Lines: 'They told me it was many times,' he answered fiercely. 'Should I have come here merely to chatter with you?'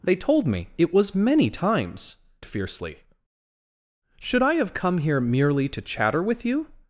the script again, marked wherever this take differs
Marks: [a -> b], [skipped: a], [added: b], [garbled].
'They told me it was many times,' [skipped: he answered] fiercely. 'Should I have come here merely to chatter with you?'